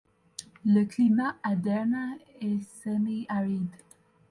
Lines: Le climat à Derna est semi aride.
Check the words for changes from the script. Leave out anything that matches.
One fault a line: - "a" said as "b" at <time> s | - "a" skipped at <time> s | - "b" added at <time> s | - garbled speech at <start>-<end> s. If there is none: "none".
none